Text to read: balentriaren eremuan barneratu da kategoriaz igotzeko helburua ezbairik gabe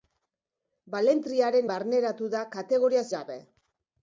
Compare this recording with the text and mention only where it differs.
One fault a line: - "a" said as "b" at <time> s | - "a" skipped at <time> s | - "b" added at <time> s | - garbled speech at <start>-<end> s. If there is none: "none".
- "eremuan" skipped at 1.7 s
- "igotzeko helburua ezbairik" skipped at 3.0 s